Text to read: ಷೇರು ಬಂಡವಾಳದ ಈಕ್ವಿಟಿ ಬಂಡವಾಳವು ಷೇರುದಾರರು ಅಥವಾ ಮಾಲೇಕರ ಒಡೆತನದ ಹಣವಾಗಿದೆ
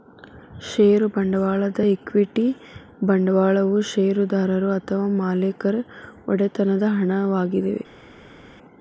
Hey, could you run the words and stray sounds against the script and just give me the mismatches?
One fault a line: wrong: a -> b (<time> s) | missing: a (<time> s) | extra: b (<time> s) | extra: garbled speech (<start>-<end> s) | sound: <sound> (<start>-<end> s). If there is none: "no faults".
no faults